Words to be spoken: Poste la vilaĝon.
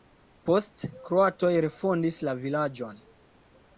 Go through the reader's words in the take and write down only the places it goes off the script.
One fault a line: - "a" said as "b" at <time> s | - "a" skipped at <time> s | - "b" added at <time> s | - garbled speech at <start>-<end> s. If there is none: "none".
- "kroatoj refondis" added at 1.1 s